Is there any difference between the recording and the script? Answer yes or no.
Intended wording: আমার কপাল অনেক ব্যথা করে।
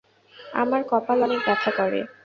no